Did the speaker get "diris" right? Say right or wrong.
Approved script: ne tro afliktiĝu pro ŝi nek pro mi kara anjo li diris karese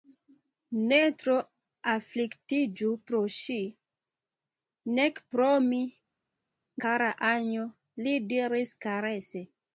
right